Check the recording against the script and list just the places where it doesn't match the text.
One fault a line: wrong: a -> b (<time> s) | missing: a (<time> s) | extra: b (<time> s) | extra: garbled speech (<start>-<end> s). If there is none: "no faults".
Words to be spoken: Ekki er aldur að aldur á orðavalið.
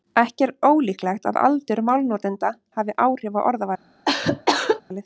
wrong: aldur -> ólíklegt (0.7 s)
extra: málnotenda hafi áhrif (1.9 s)